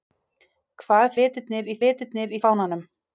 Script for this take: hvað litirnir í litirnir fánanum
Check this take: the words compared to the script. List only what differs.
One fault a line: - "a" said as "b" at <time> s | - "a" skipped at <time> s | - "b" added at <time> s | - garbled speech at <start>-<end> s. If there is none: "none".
none